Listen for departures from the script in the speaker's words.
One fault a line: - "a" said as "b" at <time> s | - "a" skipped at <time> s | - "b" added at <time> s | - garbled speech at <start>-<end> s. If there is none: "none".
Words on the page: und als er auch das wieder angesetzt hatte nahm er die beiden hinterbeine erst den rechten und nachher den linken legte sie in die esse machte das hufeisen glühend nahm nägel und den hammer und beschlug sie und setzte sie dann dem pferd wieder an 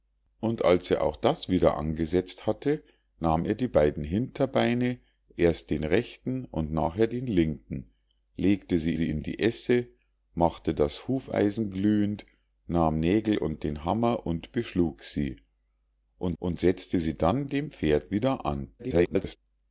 - "sie" added at 8.9 s
- "und" added at 16.4 s
- garbled speech at 18.8-19.4 s